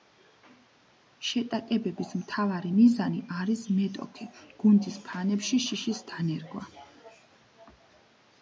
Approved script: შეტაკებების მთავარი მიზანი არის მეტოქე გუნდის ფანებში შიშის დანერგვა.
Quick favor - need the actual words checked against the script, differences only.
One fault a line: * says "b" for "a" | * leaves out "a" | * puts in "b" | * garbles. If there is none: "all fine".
all fine